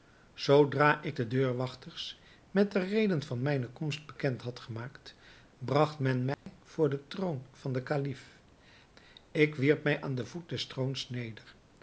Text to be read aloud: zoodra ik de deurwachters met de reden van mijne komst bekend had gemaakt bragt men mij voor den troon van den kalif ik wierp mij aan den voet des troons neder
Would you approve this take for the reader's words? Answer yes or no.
yes